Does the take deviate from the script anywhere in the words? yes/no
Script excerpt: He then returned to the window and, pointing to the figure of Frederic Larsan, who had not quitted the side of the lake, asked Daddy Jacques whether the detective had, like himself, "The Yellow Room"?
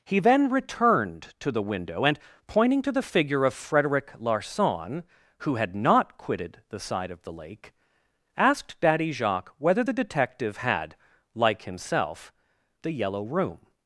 no